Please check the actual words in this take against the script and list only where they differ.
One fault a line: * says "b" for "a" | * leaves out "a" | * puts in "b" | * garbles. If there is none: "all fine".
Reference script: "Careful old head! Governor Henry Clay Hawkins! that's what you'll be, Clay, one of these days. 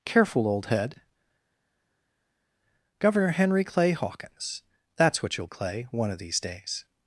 * leaves out "be"